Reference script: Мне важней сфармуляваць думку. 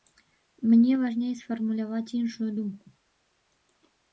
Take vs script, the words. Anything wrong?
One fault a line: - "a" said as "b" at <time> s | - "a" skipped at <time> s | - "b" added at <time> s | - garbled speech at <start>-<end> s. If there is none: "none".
- "іншую" added at 2.2 s